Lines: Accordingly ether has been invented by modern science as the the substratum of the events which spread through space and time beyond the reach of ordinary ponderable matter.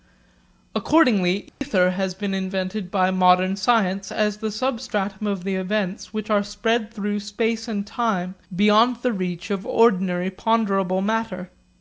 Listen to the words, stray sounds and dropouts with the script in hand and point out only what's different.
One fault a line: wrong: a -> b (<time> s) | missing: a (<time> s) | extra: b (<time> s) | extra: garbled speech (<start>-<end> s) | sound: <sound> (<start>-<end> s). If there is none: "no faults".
sound: dropout (1.5-1.6 s)
missing: the (4.5 s)
extra: are (6.3 s)